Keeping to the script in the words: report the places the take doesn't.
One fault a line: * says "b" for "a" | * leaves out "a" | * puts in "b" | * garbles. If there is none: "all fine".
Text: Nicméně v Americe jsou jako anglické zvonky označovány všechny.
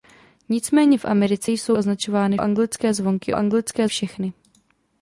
* says "označovány" for "jako"
* says "anglické" for "označovány"